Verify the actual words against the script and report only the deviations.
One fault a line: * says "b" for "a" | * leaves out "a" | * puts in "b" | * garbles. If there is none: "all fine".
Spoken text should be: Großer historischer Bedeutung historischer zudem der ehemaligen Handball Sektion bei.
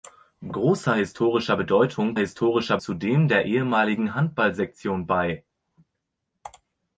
all fine